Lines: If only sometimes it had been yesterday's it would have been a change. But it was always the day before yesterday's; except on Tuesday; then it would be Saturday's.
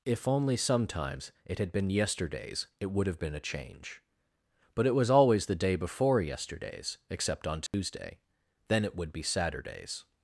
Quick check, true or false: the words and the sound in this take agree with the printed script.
false